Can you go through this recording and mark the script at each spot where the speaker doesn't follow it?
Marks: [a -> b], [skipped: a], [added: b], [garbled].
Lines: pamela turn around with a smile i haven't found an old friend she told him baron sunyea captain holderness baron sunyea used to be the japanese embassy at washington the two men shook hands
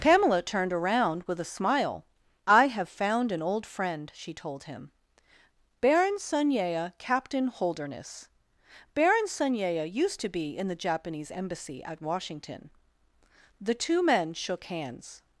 pamela [turn -> turned] around with a smile i [haven't -> have] found an old friend she told him baron sunyea captain holderness baron sunyea used to be [added: in] the japanese embassy at washington the two men shook hands